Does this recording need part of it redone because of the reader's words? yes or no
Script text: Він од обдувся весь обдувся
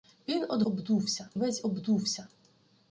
no